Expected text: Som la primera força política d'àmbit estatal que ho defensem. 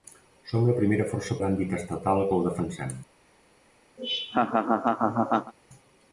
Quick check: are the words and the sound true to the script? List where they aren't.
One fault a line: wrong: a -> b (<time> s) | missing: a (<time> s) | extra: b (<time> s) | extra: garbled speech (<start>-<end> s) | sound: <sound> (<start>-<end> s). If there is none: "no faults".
missing: política (1.4 s)
sound: laugh (4.0-5.5 s)